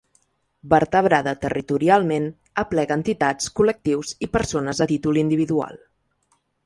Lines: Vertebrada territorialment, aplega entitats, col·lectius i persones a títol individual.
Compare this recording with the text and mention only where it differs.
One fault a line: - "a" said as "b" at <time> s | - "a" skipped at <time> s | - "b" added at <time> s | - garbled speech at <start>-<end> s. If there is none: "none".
none